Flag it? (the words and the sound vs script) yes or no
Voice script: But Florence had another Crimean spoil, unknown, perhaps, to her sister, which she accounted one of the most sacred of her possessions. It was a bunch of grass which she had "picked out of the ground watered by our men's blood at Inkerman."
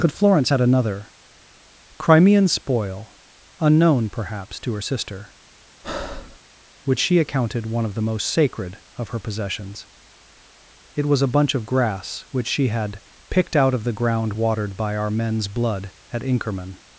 yes